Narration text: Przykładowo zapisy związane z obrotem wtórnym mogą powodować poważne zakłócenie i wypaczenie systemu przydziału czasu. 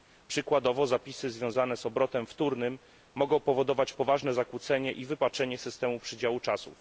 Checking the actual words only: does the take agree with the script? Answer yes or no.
yes